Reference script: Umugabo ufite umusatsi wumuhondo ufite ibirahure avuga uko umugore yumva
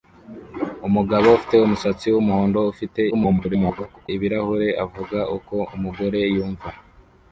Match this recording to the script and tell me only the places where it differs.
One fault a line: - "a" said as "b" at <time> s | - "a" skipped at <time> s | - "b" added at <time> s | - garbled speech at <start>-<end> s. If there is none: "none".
- garbled speech at 3.1-4.1 s